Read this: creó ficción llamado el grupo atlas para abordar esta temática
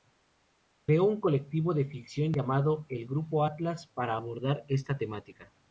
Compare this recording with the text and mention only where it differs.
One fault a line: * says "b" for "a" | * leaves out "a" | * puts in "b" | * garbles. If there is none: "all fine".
* puts in "un colectivo de"